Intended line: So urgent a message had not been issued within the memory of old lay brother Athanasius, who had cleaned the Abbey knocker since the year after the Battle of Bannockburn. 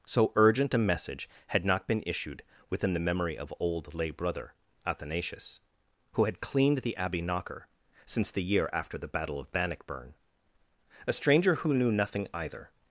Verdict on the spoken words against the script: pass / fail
fail